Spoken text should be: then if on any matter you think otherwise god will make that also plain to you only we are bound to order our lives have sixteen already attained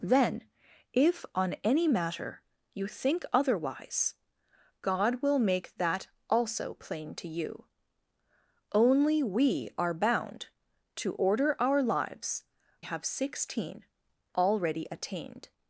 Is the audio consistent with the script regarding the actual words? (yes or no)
yes